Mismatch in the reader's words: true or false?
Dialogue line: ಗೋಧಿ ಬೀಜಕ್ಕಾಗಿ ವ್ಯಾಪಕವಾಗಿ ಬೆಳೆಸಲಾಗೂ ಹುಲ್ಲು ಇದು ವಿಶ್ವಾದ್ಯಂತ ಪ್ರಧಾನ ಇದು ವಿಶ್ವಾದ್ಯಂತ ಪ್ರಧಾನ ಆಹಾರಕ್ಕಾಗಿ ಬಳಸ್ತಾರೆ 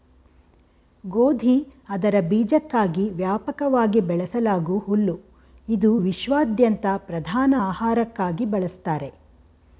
true